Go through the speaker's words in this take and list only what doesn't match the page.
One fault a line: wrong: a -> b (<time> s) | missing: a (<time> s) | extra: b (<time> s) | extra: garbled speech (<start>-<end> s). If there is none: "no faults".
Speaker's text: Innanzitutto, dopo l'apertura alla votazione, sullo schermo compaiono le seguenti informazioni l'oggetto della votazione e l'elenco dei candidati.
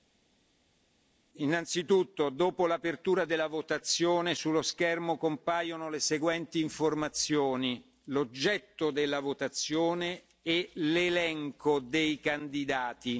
wrong: alla -> della (3.2 s)